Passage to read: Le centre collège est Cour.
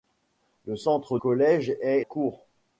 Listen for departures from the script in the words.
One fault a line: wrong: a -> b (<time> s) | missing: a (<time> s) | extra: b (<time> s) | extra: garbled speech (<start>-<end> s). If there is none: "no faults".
no faults